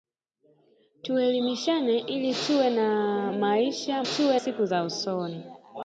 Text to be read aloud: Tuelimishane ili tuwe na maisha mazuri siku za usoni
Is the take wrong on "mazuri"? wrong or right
wrong